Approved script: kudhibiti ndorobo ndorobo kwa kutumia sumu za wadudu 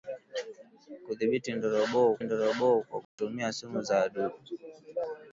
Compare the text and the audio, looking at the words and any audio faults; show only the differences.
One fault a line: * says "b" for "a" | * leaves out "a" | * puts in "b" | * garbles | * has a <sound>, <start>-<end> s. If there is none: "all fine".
* has a dropout, 3.0-3.2 s